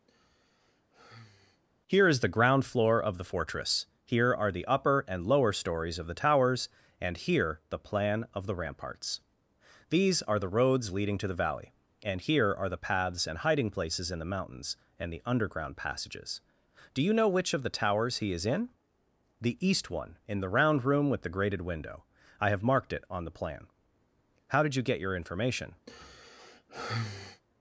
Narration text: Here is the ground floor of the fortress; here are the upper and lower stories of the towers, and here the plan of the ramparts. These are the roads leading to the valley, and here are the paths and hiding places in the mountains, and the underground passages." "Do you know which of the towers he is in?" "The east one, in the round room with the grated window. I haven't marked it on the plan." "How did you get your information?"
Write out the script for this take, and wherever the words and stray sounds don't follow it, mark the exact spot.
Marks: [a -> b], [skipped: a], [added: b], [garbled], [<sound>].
[sigh] Here is the ground floor of the fortress; here are the upper and lower stories of the towers, and here the plan of the ramparts. These are the roads leading to the valley, and here are the paths and hiding places in the mountains, and the underground passages." "Do you know which of the towers he is in?" "The east one, in the round room with the grated window. I [haven't -> have] marked it on the plan." "How did you get your information?" [sigh]